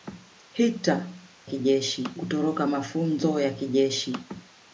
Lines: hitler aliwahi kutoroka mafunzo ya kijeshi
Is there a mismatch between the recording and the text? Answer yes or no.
yes